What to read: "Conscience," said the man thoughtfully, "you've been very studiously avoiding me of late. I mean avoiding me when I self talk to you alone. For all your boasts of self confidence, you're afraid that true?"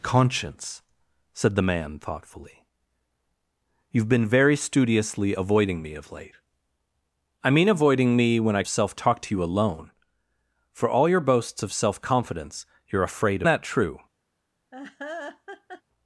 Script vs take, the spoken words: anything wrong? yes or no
no